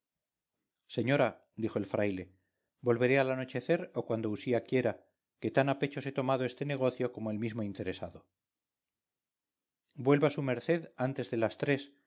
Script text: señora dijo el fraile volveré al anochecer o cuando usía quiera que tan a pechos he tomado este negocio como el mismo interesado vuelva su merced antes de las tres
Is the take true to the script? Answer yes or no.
yes